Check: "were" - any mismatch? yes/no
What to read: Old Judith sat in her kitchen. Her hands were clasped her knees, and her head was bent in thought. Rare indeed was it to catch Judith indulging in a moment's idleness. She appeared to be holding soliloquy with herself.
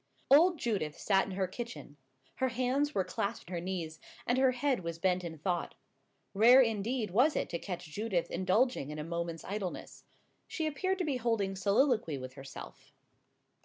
no